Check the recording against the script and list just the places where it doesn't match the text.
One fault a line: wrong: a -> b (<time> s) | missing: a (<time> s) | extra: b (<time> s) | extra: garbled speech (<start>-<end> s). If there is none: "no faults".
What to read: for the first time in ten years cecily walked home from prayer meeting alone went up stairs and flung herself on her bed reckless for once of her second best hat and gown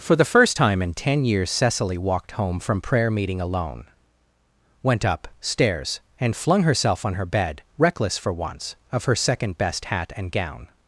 no faults